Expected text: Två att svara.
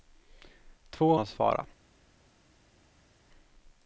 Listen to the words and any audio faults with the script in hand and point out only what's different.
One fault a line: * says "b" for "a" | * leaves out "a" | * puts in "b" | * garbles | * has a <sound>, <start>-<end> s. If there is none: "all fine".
all fine